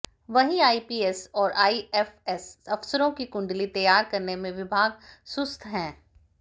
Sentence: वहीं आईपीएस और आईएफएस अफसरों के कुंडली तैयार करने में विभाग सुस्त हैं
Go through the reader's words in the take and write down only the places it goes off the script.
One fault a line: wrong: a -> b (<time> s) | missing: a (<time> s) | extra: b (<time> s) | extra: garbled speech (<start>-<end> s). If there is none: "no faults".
wrong: के -> की (3.1 s)